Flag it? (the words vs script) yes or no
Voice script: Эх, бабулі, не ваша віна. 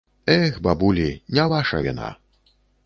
no